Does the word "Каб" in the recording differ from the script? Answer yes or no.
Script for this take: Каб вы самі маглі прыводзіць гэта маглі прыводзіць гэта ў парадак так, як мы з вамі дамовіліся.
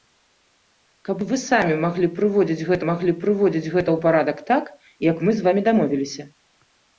no